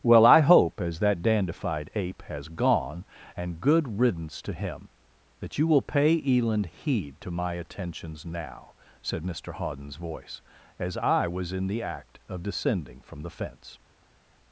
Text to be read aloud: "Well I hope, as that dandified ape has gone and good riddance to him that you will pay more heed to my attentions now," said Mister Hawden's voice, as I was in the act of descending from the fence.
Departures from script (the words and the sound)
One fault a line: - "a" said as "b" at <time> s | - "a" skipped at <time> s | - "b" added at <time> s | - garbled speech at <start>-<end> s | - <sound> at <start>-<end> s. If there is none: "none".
- "more" said as "eland" at 6.2 s